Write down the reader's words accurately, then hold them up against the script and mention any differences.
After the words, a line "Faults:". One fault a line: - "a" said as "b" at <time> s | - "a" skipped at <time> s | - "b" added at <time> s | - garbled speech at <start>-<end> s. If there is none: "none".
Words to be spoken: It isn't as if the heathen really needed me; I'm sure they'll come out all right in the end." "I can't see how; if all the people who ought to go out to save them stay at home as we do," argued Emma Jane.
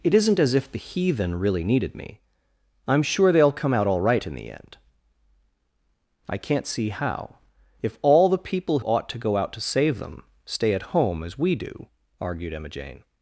It isn't as if the heathen really needed me; I'm sure they'll come out all right in the end." "I can't see how; if all the people ought to go out to save them stay at home as we do," argued Emma Jane.
Faults:
- "who" skipped at 8.8 s